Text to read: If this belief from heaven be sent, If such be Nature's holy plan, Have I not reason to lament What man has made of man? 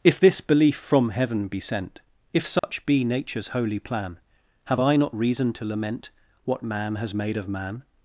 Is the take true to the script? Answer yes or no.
yes